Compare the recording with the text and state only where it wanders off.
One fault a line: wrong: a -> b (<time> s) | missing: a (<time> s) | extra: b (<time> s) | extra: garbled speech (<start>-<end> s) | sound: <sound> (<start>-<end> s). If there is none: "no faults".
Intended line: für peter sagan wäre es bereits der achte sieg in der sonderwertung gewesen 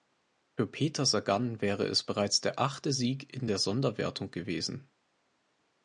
no faults